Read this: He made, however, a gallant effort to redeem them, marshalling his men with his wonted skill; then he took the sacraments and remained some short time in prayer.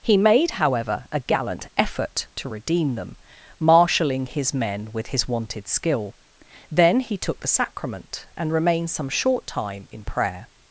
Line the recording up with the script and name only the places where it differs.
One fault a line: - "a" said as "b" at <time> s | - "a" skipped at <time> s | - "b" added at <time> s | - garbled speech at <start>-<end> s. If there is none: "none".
- "sacraments" said as "sacrament" at 7.5 s